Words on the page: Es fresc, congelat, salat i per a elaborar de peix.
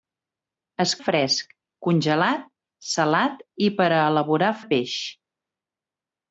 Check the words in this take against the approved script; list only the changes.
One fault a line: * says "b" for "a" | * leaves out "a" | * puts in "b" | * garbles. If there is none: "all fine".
all fine